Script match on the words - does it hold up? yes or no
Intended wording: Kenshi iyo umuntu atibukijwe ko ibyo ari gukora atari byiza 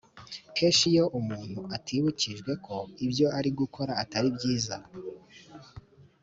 yes